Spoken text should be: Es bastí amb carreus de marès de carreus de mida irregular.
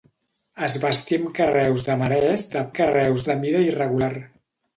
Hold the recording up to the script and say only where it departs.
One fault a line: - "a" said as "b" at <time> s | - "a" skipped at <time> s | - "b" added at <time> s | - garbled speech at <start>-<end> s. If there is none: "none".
none